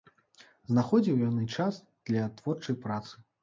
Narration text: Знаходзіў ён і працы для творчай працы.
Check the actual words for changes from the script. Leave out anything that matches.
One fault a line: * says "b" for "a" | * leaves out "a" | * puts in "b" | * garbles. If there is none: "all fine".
* says "час" for "працы"